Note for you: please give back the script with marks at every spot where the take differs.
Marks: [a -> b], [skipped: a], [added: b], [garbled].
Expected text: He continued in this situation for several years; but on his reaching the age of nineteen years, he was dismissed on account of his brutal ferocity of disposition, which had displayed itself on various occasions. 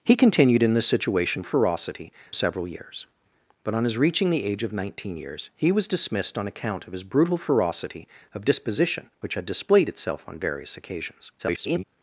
He continued in this situation [for -> ferocity] several years; but on his reaching the age of nineteen years, he was dismissed on account of his brutal ferocity of disposition, which had displayed itself on various occasions. [garbled]